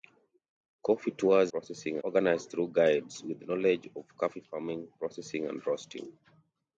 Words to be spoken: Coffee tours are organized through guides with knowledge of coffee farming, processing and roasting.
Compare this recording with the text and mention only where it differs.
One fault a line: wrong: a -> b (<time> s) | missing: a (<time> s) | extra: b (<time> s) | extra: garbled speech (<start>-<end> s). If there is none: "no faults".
wrong: are -> processing (1.5 s)